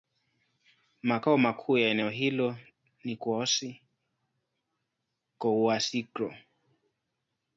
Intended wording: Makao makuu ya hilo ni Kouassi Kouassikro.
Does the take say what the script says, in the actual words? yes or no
no